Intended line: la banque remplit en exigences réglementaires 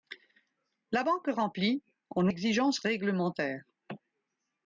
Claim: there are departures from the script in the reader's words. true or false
false